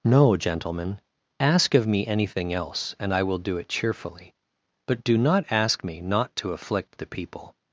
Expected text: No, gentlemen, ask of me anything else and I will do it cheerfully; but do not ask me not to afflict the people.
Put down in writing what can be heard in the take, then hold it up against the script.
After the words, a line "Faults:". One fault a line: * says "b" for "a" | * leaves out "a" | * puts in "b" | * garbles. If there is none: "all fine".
No, gentlemen, ask of me anything else and I will do it cheerfully; but do not ask me not to afflict the people.
Faults:
all fine